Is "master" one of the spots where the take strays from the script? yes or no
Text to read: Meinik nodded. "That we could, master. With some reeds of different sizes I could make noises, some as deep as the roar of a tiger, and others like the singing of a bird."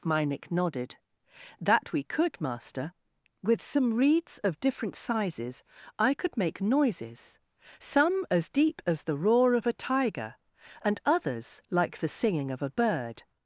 no